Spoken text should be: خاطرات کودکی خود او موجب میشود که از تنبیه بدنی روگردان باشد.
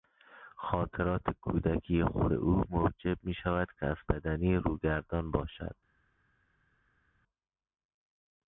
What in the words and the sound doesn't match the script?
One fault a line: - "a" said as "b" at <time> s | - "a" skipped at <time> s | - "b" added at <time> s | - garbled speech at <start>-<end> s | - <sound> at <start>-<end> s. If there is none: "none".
- "تنبیه" skipped at 4.0 s